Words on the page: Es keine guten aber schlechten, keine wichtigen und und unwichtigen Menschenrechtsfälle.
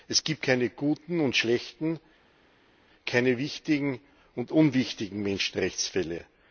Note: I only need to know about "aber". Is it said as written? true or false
false